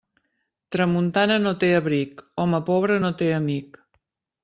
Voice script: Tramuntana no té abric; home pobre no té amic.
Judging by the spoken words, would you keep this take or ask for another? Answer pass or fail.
pass